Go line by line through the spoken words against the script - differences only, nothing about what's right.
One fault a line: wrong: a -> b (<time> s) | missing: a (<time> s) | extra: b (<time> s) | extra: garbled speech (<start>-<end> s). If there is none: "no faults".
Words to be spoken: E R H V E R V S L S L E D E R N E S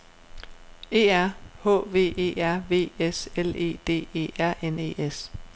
missing: S L (3.5 s)